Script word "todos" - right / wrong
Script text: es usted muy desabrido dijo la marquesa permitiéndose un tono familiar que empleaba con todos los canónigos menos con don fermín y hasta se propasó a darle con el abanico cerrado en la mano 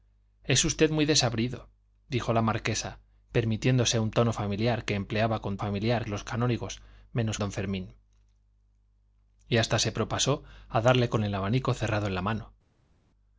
wrong